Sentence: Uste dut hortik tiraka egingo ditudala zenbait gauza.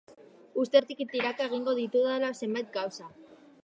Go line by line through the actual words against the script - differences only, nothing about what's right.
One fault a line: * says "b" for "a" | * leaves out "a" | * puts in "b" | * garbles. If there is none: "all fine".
* leaves out "dut"